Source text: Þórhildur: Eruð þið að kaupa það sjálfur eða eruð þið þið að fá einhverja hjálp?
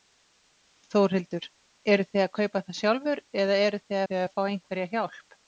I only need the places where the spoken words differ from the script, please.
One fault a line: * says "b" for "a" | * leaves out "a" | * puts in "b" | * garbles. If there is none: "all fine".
all fine